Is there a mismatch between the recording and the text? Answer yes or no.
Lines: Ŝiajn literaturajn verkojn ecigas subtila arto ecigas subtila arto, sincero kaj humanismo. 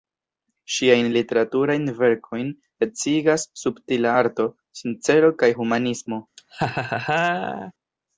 yes